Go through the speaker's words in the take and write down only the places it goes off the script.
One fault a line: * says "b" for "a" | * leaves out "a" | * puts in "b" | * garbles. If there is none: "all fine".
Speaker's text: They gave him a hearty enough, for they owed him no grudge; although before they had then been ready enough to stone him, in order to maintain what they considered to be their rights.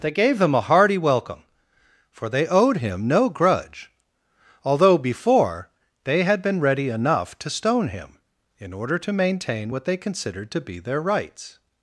* says "welcome" for "enough"
* leaves out "then"